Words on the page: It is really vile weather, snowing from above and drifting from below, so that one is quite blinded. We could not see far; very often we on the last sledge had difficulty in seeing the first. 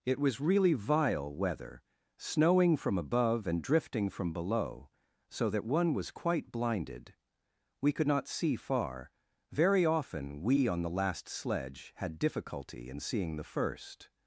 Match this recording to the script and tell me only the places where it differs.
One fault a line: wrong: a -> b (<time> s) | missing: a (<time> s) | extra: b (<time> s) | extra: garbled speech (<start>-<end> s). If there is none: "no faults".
wrong: is -> was (0.2 s)
wrong: is -> was (5.9 s)